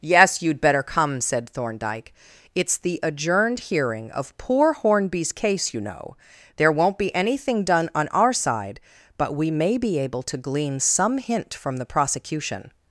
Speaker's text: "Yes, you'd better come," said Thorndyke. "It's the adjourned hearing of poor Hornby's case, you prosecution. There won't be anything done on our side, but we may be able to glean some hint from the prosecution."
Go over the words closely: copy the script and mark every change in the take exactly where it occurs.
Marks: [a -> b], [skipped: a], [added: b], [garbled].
"Yes, you'd better come," said Thorndyke. "It's the adjourned hearing of poor Hornby's case, you [prosecution. -> know] There won't be anything done on our side, but we may be able to glean some hint from the prosecution."